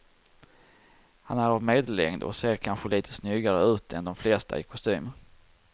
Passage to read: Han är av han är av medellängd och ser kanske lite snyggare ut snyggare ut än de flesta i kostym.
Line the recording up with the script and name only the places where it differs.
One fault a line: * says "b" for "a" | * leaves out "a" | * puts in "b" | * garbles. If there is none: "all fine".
* leaves out "han är av"
* leaves out "snyggare ut"